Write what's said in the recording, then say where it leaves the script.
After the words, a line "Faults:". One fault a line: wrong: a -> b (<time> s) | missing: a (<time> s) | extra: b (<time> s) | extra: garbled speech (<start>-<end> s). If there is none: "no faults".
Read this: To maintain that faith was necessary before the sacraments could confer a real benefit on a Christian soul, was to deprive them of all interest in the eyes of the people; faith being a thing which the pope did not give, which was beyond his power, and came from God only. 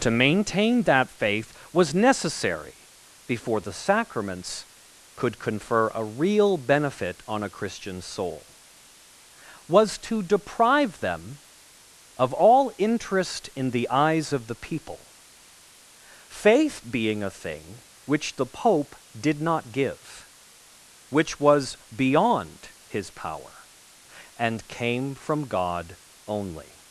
To maintain that faith was necessary before the sacraments could confer a real benefit on a Christian soul, was to deprive them of all interest in the eyes of the people; faith being a thing which the pope did not give, which was beyond his power, and came from God only.
Faults:
no faults